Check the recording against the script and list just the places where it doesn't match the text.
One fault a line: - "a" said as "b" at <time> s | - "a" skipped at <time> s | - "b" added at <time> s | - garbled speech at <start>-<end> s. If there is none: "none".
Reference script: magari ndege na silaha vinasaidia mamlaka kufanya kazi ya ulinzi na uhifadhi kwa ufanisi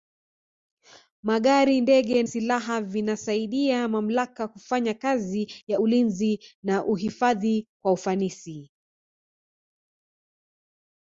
- "na" skipped at 2.2 s